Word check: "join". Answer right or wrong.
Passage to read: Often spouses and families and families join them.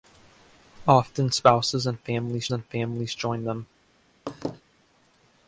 right